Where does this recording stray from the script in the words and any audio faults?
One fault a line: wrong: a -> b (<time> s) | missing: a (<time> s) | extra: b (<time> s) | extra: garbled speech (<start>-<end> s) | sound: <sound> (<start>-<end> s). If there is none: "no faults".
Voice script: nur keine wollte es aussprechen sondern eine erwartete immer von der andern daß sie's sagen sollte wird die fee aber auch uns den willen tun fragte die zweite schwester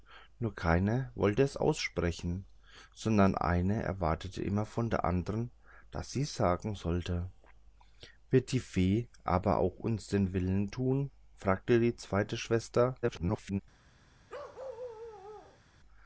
extra: garbled speech (13.0-13.6 s)
sound: bark (14.3-15.6 s)